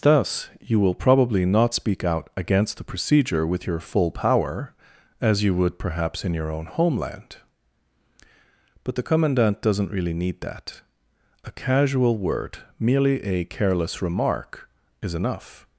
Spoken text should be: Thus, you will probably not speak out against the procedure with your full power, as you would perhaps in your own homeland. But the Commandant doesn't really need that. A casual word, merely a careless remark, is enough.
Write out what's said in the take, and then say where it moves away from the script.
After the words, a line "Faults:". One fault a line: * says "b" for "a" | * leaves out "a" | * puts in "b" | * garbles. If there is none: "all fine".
Thus, you will probably not speak out against the procedure with your full power, as you would perhaps in your own homeland. But the Commandant doesn't really need that. A casual word, merely a careless remark, is enough.
Faults:
all fine